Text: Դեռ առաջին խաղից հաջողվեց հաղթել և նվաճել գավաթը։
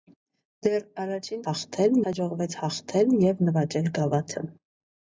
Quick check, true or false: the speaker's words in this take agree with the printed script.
false